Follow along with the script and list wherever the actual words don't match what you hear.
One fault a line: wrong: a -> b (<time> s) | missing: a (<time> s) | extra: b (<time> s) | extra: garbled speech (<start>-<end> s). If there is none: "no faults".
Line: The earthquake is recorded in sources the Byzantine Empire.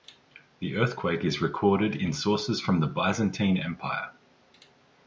extra: from (2.6 s)